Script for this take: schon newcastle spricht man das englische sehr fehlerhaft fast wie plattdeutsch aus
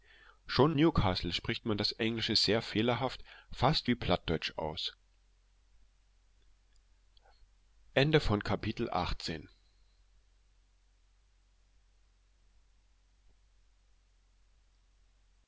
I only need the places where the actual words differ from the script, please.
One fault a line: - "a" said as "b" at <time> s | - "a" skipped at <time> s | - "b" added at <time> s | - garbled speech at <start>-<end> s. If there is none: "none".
none